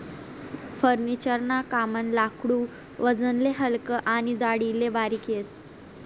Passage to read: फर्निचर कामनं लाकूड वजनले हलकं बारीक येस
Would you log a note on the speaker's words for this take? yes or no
yes